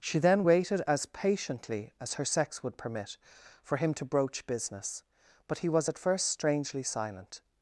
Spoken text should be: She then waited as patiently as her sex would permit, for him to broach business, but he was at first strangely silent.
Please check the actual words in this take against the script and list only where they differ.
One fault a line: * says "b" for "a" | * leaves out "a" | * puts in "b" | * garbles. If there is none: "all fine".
all fine